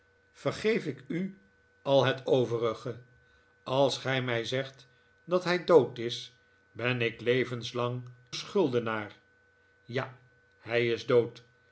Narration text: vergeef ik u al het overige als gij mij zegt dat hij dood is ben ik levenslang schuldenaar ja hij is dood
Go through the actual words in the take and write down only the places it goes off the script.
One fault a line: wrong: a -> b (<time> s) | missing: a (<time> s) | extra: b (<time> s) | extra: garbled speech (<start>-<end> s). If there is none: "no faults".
no faults